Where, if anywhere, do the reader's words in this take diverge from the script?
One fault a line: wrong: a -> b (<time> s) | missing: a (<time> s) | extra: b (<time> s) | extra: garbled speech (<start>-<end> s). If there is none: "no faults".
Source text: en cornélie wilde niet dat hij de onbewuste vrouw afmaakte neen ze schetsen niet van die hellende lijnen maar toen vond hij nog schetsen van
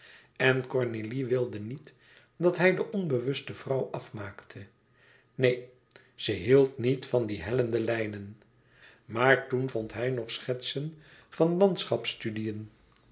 wrong: schetsen -> hield (6.3 s)